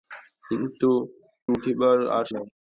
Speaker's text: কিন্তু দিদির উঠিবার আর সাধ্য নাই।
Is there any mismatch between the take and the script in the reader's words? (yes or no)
yes